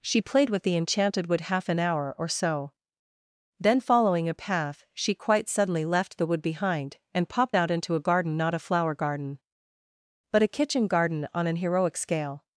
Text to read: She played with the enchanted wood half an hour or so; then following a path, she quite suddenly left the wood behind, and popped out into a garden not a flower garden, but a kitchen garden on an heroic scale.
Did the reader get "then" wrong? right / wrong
right